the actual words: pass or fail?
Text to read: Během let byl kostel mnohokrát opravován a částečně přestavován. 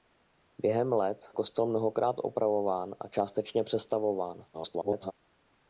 fail